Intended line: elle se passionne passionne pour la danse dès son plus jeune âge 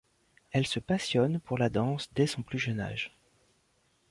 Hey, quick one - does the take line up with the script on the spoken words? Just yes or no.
no